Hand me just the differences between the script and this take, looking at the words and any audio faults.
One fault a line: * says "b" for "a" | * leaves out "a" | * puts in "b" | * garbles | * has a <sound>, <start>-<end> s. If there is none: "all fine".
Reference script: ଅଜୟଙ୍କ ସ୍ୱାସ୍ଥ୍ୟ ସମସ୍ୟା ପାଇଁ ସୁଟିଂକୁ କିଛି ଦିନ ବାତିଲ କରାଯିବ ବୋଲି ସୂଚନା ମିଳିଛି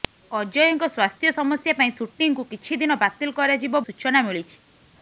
* leaves out "ବୋଲି"